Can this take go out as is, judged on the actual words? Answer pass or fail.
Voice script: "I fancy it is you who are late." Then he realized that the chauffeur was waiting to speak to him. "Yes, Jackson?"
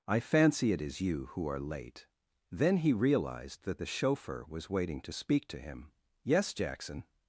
pass